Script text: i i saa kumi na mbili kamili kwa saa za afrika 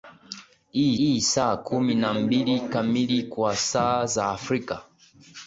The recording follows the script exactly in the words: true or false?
true